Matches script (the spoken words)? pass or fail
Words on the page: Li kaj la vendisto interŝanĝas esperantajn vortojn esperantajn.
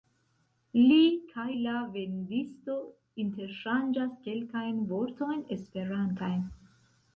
fail